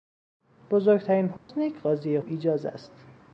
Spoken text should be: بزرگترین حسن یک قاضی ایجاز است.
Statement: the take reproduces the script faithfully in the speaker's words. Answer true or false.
true